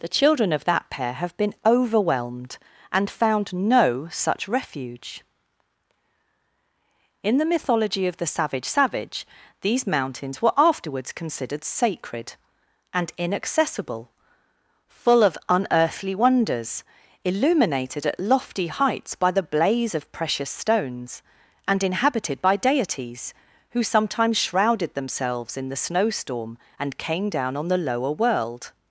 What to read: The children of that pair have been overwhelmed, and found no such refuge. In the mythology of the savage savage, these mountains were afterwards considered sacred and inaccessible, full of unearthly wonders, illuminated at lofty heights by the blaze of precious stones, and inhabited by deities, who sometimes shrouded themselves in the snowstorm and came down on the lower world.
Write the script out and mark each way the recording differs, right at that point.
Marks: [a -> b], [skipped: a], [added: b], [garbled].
The children of that pair have been overwhelmed, and found no such refuge. In the mythology of the savage savage, these mountains were afterwards considered sacred and inaccessible, full of unearthly wonders, illuminated at lofty heights by the blaze of precious stones, and inhabited by deities, who sometimes shrouded themselves in the snowstorm and came down on the lower world.